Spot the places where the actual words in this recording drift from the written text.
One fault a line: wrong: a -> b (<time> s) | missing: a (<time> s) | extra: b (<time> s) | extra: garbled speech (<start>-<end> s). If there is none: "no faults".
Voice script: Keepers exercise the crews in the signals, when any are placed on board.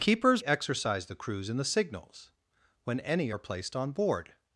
no faults